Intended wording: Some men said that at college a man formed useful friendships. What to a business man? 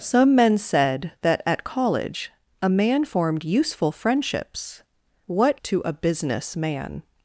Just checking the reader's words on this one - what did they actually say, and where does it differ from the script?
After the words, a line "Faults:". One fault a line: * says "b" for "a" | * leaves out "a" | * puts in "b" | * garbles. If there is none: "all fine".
Some men said that at college a man formed useful friendships. What to a business man?
Faults:
all fine